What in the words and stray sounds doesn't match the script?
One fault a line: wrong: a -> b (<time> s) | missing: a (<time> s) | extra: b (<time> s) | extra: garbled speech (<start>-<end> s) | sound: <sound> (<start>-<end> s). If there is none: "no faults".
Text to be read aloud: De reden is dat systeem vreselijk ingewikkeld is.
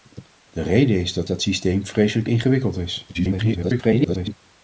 extra: dat (1.3 s)
extra: garbled speech (3.1-4.3 s)